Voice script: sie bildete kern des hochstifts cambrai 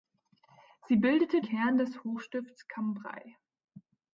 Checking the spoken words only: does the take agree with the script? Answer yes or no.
yes